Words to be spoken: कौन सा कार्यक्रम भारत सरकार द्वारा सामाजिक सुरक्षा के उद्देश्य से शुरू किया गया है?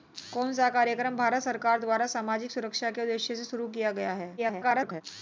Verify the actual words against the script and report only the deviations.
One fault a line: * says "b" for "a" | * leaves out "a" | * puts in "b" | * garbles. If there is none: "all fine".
* garbles